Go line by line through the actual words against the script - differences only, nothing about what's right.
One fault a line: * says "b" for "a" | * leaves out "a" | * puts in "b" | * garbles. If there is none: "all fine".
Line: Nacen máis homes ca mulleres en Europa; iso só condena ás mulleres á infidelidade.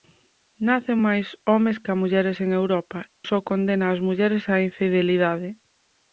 * leaves out "iso"